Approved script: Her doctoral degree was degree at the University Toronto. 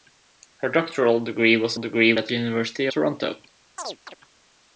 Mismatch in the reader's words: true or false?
false